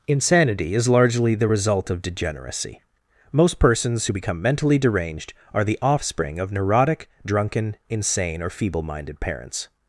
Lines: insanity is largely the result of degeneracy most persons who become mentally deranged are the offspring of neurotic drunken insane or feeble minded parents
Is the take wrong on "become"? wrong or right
right